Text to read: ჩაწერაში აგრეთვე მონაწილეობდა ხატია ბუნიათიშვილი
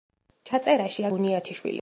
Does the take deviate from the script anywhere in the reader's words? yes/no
yes